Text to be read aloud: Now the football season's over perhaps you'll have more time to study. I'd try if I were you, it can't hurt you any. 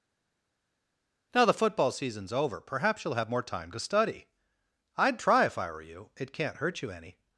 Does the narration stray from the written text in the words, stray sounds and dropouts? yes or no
no